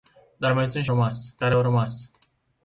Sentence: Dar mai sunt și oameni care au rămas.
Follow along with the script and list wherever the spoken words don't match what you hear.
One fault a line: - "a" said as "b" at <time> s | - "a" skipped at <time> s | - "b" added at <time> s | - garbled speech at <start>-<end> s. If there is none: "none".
- "oameni" said as "rămas" at 0.9 s